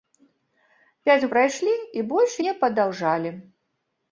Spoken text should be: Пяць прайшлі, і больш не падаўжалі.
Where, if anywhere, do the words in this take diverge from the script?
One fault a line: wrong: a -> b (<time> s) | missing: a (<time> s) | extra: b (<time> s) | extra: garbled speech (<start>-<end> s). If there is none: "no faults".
no faults